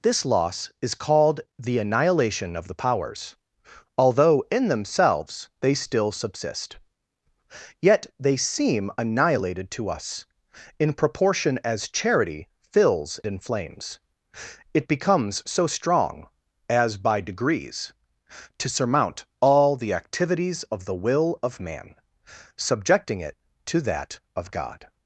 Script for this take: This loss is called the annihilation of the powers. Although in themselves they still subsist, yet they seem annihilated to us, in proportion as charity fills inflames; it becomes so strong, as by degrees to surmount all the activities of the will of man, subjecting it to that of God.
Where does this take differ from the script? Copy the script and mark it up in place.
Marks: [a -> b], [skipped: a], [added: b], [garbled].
This loss is called the annihilation of the powers. Although in themselves they still subsist, yet they seem annihilated to us, in proportion as charity fills inflames; it becomes so strong, as by degrees to surmount all the activities of the will of man, subjecting it to that of God.